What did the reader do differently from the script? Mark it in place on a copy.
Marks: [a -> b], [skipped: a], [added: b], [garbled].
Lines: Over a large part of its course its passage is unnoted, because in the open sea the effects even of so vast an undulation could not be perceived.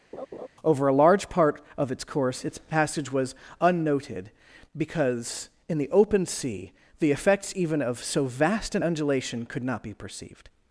Over a large part of its course its passage [is -> was] unnoted, because in the open sea the effects even of so vast an undulation could not be perceived.